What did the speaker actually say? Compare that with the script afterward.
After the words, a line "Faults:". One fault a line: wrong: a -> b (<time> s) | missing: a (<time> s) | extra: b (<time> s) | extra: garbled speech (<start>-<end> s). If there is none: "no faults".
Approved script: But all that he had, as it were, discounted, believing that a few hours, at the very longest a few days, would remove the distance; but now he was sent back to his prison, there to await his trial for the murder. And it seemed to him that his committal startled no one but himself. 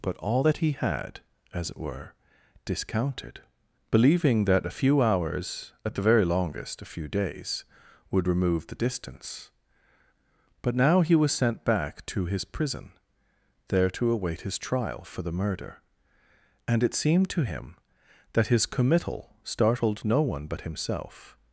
But all that he had, as it were, discounted, believing that a few hours, at the very longest a few days, would remove the distance; but now he was sent back to his prison, there to await his trial for the murder. And it seemed to him that his committal startled no one but himself.
Faults:
no faults